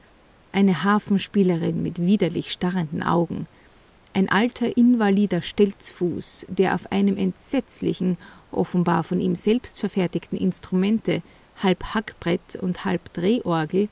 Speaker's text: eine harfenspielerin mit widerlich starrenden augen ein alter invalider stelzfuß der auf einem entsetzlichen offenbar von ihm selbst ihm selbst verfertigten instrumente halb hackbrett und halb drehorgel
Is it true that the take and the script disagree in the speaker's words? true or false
true